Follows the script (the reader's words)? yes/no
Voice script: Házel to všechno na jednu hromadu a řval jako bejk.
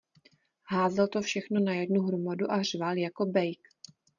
yes